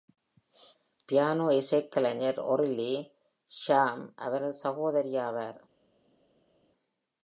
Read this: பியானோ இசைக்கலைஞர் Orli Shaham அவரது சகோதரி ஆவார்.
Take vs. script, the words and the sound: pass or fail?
pass